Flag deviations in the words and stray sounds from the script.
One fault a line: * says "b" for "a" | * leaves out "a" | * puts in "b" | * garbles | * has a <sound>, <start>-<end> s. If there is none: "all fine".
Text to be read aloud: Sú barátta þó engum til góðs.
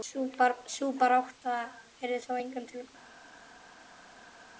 * puts in "yrði"